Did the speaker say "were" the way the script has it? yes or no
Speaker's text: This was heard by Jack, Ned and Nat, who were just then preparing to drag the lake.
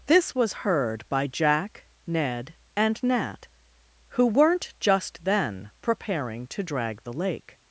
no